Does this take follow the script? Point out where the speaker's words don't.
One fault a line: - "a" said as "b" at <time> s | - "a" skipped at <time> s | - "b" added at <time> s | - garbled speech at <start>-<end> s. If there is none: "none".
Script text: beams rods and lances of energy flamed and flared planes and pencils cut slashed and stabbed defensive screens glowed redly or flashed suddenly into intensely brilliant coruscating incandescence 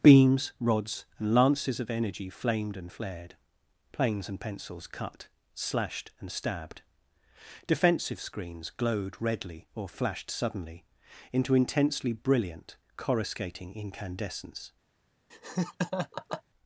none